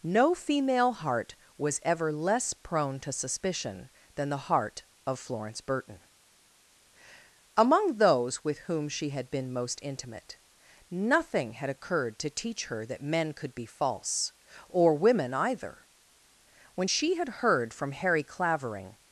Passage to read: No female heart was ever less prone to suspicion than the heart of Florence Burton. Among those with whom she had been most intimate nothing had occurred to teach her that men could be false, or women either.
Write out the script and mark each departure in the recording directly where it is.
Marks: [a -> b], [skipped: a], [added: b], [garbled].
No female heart was ever less prone to suspicion than the heart of Florence Burton. Among those with whom she had been most intimate nothing had occurred to teach her that men could be false, or women either. [added: When she had heard from Harry Clavering]